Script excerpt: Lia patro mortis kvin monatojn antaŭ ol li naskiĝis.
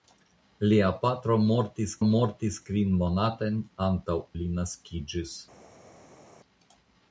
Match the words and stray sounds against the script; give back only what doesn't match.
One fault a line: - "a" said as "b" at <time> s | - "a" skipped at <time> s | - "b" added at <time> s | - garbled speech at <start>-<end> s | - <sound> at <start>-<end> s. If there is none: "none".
- "mortis" added at 2.1 s
- "ol" skipped at 4.2 s